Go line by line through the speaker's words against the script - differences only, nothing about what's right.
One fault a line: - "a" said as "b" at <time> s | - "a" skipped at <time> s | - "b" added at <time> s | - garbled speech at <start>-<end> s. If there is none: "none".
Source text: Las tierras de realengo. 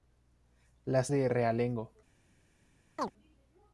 - "tierras" skipped at 1.1 s